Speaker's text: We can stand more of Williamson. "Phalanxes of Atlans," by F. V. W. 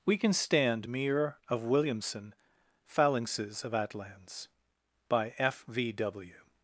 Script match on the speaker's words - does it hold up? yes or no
no